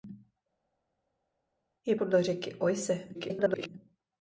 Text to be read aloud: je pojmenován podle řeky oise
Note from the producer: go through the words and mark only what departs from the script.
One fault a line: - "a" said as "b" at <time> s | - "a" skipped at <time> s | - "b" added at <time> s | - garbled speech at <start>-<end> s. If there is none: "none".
- "pojmenován" skipped at 2.0 s
- garbled speech at 3.1-3.7 s